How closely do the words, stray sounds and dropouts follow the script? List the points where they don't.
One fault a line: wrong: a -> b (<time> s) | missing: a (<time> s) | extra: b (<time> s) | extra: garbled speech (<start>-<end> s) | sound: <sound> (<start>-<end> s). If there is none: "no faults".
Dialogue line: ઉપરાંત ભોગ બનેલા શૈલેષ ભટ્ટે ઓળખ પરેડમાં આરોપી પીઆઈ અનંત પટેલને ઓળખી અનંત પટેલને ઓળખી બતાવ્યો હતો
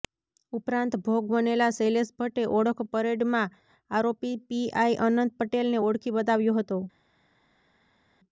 missing: અનંત પટેલને ઓળખી (6.2 s)